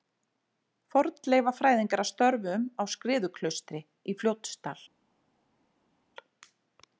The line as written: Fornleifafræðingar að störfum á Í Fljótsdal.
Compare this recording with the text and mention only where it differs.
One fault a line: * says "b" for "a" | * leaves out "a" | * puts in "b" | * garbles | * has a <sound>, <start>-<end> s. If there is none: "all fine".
* puts in "Skriðuklaustri"